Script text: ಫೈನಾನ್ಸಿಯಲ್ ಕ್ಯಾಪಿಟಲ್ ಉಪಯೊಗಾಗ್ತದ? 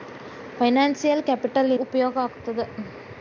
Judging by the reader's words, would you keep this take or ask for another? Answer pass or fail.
pass